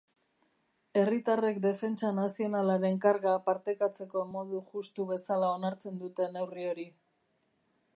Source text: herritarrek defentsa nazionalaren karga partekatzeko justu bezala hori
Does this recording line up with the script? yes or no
no